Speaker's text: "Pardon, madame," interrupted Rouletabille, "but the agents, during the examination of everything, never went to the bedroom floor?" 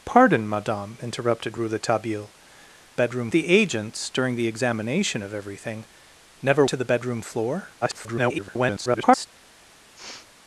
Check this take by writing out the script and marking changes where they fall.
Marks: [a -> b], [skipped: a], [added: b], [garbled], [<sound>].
"Pardon, madame," interrupted Rouletabille, ["but -> bedroom] the agents, during the examination of everything, never [skipped: went] to the bedroom floor?" [garbled] [sniff]